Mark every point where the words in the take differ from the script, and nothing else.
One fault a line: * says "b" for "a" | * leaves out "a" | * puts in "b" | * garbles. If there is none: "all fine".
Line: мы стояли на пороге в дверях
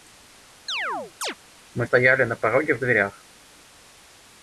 all fine